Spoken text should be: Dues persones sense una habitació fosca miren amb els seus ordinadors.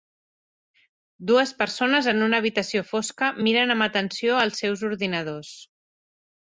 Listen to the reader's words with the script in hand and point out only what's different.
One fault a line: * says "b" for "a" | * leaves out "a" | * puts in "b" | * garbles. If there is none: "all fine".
* says "en" for "sense"
* puts in "atenció"